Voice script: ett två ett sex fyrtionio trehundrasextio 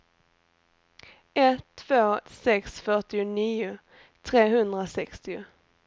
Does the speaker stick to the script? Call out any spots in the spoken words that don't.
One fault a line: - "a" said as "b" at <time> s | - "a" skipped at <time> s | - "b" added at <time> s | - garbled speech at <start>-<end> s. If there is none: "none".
- "ett" skipped at 2.2 s